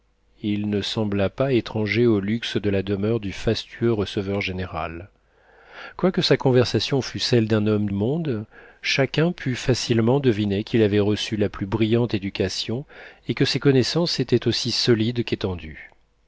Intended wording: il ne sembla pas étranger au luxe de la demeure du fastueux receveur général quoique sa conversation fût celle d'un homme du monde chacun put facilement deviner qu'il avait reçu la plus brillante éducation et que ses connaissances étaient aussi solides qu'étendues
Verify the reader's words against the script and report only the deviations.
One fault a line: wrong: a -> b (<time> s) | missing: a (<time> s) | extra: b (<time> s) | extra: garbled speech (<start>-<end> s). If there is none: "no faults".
missing: du (7.9 s)